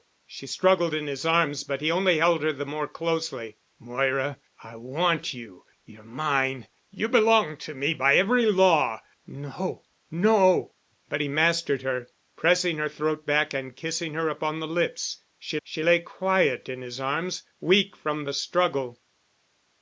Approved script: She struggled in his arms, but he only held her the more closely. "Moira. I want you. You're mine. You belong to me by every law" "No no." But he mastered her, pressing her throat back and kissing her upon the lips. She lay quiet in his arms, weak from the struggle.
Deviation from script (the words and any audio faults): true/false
true